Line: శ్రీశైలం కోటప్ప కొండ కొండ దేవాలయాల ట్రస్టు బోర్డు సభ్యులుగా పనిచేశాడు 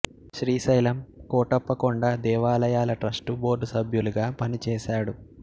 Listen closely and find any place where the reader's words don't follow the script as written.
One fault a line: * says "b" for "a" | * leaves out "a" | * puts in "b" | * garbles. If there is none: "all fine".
* leaves out "కొండ"